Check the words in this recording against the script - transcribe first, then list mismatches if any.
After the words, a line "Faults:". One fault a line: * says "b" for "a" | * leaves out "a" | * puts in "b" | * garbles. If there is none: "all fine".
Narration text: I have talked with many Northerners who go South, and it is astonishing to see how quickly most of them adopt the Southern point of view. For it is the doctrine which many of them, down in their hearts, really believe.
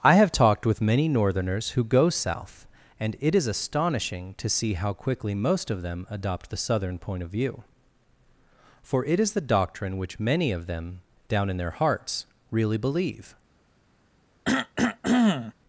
I have talked with many Northerners who go South, and it is astonishing to see how quickly most of them adopt the Southern point of view. For it is the doctrine which many of them, down in their hearts, really believe.
Faults:
all fine